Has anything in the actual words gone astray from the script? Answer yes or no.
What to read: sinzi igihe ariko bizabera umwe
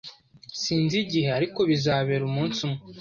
yes